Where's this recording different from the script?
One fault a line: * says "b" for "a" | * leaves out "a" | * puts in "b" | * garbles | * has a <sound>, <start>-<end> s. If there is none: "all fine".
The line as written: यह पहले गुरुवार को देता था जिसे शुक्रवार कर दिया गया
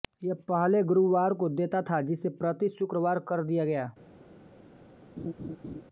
* puts in "प्रति"
* has a laugh, 5.2-5.8 s